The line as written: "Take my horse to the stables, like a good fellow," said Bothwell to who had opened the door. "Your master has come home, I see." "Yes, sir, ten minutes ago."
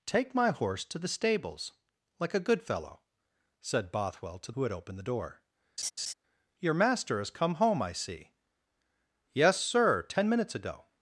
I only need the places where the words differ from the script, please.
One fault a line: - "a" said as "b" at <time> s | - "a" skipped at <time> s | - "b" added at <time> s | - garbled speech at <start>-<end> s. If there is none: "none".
none